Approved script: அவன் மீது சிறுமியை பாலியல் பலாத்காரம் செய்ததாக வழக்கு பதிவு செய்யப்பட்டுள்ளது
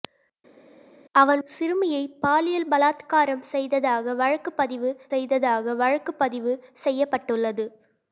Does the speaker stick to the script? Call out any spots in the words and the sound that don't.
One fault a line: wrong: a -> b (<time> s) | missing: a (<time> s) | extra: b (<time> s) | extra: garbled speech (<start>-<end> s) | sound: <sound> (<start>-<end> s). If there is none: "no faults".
missing: மீது (1.4 s)
extra: செய்ததாக வழக்கு பதிவு (5.1 s)